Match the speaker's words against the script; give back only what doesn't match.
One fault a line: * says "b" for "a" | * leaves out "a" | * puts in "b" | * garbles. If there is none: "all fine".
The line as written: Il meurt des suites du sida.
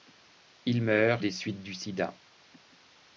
all fine